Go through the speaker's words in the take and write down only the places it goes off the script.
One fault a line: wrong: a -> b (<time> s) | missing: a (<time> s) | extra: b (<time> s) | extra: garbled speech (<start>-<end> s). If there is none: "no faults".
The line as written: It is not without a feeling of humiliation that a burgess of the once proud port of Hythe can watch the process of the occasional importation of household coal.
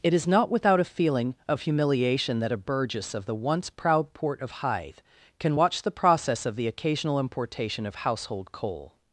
no faults